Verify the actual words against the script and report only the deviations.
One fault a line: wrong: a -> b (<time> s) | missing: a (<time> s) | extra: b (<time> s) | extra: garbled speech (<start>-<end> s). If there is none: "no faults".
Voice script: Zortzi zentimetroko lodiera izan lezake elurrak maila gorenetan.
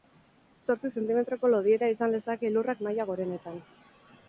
no faults